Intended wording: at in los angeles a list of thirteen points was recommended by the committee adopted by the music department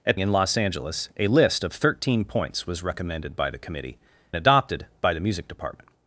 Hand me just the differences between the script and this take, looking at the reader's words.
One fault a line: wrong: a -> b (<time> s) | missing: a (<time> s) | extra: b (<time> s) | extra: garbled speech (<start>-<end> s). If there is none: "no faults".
no faults